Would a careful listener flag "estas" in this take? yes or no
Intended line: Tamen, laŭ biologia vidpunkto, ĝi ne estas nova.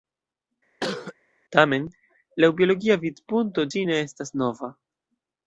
no